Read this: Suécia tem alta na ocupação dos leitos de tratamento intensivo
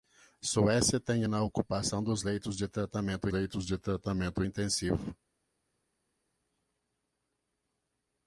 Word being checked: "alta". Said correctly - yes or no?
no